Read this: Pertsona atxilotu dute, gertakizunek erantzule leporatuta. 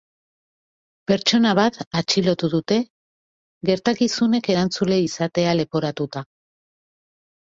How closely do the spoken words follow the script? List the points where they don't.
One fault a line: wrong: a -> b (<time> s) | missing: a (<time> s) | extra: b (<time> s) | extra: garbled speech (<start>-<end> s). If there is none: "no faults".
extra: bat (1.6 s)
extra: izatea (5.0 s)